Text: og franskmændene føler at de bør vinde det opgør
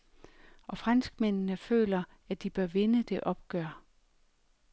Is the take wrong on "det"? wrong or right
right